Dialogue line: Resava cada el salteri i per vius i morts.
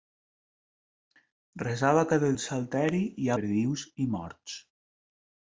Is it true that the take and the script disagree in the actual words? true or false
false